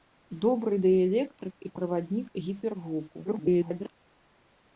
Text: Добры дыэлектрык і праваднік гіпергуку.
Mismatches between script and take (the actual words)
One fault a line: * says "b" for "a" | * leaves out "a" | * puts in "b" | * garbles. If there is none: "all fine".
* garbles